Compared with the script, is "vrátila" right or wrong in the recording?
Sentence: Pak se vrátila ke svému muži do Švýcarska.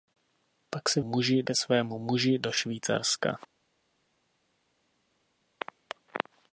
wrong